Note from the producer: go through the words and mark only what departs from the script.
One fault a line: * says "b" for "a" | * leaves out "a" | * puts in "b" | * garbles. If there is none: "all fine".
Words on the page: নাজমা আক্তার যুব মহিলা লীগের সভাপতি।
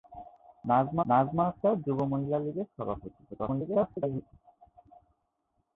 * puts in "নাজমা"
* garbles